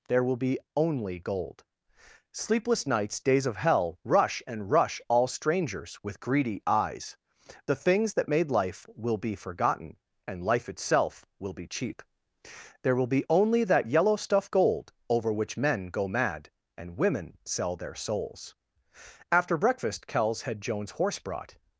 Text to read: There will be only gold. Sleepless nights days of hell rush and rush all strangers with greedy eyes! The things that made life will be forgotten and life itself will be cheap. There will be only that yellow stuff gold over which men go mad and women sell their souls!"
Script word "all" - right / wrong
right